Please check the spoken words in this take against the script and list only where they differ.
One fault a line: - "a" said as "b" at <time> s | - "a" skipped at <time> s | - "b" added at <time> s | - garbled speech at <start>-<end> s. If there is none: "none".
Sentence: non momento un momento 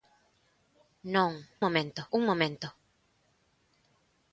none